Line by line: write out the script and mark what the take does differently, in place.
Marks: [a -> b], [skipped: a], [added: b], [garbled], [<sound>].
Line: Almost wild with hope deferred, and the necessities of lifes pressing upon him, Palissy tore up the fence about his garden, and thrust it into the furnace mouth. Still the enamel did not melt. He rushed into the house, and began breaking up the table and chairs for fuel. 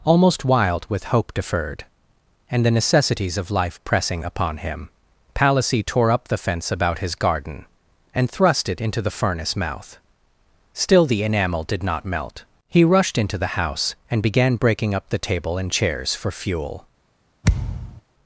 Almost wild with hope deferred, and the necessities of [lifes -> life] pressing upon him, Palissy tore up the fence about his garden, and thrust it into the furnace mouth. Still the enamel did not melt. He rushed into the house, and began breaking up the table and chairs for fuel. [thud]